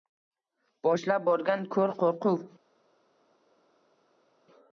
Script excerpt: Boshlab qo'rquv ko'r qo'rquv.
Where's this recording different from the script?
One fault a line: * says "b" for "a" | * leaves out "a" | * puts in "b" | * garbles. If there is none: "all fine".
* says "borgan" for "qo'rquv"